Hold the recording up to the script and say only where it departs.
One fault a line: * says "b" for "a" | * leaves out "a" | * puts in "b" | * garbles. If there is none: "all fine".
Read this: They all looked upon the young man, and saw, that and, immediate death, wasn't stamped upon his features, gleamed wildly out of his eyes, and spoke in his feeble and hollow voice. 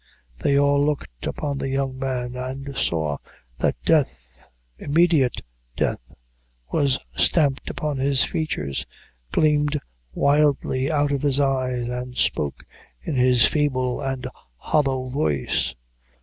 * says "death" for "and"
* says "was" for "wasn't"